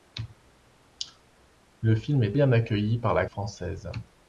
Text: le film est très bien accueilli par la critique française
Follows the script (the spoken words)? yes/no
no